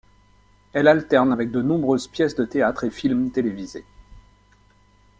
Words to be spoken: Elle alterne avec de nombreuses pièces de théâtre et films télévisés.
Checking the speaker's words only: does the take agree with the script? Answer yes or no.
yes